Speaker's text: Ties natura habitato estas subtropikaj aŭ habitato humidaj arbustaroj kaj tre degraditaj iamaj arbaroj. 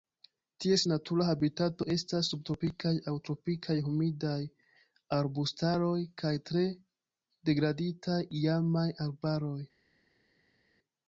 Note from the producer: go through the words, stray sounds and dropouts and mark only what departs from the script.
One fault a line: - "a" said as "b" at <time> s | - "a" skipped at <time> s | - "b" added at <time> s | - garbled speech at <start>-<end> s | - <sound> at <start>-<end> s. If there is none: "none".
- "habitato" said as "tropikaj" at 3.3 s